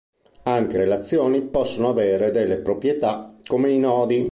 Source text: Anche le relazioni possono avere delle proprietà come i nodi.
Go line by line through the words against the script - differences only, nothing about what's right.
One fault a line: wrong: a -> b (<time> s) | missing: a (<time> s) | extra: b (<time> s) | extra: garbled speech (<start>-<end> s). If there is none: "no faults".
missing: le (0.8 s)